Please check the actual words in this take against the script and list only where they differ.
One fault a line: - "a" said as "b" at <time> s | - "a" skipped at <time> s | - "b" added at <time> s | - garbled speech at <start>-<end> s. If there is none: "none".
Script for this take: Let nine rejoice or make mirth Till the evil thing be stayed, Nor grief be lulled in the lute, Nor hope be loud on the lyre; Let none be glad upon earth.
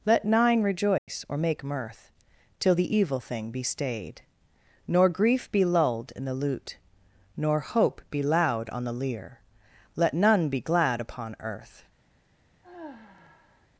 none